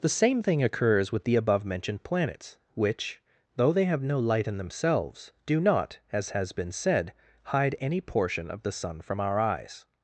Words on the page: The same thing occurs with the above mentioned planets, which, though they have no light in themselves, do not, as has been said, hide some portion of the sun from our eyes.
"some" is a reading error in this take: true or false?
true